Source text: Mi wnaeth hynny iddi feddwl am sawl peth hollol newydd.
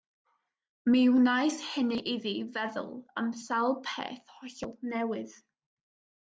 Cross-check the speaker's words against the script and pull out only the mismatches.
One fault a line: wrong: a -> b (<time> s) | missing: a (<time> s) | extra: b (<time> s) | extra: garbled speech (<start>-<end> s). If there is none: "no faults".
no faults